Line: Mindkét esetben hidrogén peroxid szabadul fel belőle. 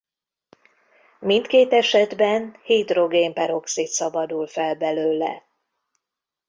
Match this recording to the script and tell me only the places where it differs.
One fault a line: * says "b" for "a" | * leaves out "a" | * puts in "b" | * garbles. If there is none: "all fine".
all fine